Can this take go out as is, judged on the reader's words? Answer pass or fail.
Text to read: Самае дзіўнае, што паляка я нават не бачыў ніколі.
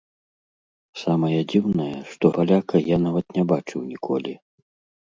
pass